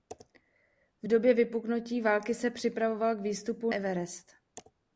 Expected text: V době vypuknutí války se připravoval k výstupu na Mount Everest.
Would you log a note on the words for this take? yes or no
yes